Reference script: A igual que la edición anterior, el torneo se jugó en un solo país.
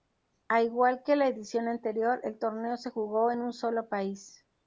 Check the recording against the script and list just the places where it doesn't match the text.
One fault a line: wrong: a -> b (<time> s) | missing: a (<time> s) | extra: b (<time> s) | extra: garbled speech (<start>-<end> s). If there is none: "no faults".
no faults